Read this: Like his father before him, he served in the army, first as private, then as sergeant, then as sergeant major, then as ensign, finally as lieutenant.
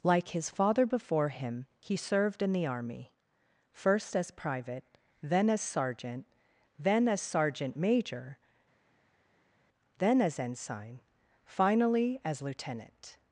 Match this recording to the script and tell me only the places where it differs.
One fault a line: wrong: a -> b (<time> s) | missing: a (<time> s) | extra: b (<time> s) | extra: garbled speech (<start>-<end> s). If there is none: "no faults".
no faults